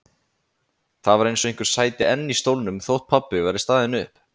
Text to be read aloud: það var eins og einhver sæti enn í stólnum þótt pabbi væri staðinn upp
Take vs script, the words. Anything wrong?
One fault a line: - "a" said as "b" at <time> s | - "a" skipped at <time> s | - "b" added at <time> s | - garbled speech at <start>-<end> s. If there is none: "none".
none